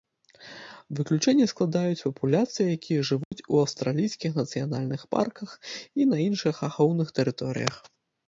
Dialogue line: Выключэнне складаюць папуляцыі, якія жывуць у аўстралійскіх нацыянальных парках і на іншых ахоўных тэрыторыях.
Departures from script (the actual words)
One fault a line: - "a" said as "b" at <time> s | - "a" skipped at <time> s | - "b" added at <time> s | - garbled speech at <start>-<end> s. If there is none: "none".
none